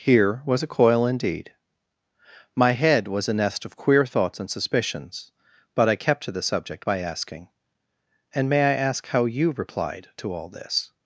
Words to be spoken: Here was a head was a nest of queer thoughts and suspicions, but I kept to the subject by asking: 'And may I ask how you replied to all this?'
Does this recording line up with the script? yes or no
no